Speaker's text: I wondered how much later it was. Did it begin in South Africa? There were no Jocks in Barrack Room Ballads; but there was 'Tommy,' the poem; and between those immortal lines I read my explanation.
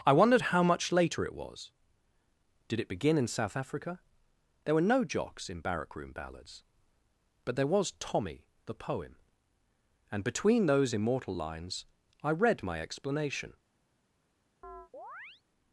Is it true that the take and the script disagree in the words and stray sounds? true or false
true